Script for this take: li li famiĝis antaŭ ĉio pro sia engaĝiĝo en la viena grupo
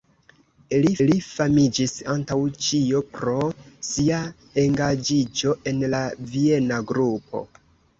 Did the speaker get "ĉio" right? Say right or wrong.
right